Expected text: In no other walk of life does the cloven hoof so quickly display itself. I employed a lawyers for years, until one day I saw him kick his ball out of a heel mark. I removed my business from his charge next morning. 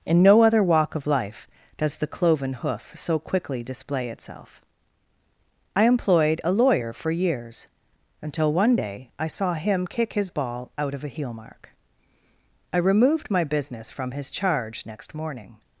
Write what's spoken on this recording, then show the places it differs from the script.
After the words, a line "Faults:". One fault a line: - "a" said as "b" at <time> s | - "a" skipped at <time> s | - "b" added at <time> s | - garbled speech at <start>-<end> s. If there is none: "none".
In no other walk of life does the cloven hoof so quickly display itself. I employed a lawyer for years, until one day I saw him kick his ball out of a heel mark. I removed my business from his charge next morning.
Faults:
- "lawyers" said as "lawyer" at 6.5 s